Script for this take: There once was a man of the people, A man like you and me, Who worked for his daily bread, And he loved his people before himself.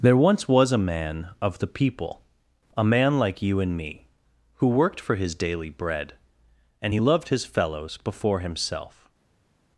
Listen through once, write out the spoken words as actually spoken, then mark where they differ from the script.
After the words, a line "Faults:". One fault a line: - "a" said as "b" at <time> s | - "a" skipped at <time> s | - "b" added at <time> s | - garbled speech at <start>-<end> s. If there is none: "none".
There once was a man of the people, A man like you and me, Who worked for his daily bread, And he loved his fellows before himself.
Faults:
- "people" said as "fellows" at 7.5 s